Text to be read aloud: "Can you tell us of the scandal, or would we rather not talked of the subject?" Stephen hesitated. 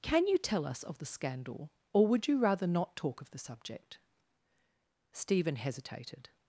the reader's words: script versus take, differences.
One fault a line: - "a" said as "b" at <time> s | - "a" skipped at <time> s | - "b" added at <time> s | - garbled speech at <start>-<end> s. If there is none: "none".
- "we" said as "you" at 2.3 s
- "talked" said as "talk" at 3.0 s